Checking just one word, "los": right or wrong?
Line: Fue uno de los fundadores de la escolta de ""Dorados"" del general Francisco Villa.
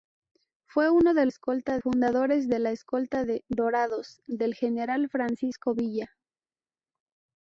wrong